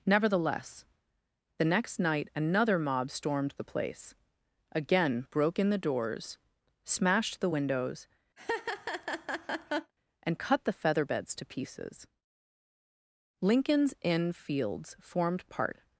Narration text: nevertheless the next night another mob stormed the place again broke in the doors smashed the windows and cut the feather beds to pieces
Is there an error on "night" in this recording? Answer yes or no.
no